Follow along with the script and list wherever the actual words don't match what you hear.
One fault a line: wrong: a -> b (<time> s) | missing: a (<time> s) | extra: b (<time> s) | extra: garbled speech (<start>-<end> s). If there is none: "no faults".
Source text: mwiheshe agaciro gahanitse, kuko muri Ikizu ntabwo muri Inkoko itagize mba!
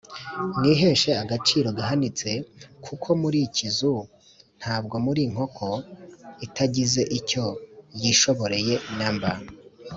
extra: icyo yishoboreye na (7.2 s)